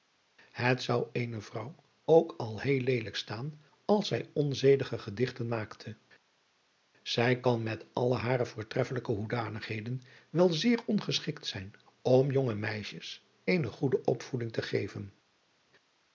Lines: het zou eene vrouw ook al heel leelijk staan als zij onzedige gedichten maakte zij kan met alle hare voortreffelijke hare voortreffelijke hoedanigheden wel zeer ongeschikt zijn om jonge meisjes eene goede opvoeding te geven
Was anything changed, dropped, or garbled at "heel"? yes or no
no